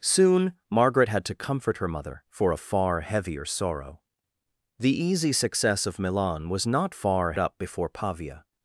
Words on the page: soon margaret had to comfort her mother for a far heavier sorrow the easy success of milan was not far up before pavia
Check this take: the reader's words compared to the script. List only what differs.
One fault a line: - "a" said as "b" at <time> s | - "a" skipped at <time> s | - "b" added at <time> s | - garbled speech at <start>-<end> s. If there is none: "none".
none